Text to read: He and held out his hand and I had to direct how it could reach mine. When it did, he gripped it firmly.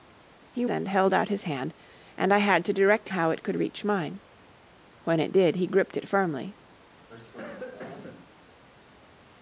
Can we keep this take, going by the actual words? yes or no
yes